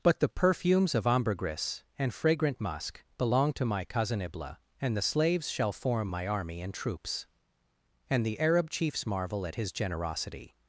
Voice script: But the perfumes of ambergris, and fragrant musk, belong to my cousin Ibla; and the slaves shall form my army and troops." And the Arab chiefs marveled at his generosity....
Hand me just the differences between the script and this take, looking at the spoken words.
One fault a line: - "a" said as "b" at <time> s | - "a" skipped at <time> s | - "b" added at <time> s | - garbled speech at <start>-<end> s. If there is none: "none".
- "marveled" said as "marvel" at 9.1 s